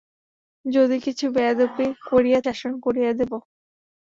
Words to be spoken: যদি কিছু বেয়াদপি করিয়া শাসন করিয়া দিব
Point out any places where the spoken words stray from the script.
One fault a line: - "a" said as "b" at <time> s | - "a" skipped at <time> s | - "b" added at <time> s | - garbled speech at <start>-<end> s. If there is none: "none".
none